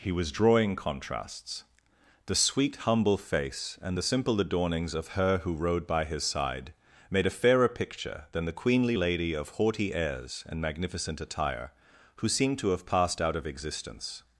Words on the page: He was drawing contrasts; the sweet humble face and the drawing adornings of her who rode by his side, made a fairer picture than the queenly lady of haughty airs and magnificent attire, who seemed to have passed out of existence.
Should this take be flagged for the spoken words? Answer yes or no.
yes